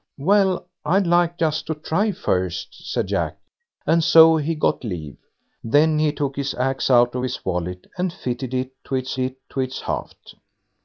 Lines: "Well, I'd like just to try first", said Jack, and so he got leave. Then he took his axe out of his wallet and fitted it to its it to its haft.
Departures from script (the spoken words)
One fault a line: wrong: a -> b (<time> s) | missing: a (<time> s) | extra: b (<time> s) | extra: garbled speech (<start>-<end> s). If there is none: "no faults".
no faults